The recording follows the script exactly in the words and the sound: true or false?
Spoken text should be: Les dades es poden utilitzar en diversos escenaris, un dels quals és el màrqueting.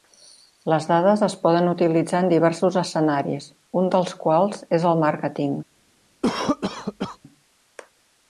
false